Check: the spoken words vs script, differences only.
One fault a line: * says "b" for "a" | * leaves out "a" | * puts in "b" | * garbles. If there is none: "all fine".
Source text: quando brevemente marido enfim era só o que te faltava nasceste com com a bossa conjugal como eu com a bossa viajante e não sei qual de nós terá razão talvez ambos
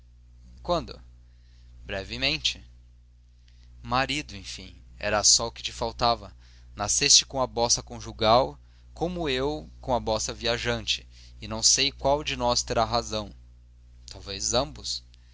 * leaves out "com"